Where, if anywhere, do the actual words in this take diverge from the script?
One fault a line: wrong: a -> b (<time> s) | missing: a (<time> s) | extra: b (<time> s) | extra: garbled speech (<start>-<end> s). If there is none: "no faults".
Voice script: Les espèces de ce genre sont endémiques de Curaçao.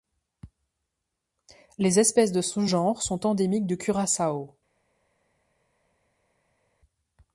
no faults